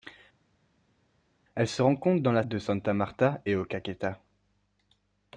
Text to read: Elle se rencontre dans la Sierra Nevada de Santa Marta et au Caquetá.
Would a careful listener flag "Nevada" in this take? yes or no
yes